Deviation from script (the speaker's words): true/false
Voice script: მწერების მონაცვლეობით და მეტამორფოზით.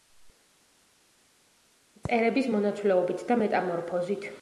false